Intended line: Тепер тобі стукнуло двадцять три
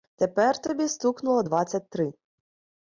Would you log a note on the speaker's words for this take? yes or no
no